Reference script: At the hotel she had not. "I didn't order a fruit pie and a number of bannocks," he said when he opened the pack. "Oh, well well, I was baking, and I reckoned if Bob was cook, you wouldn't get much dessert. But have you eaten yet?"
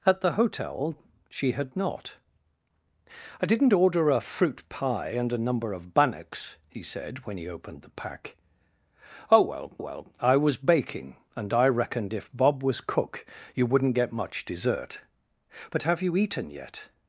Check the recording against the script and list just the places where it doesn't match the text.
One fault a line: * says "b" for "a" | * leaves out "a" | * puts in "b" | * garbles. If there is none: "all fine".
all fine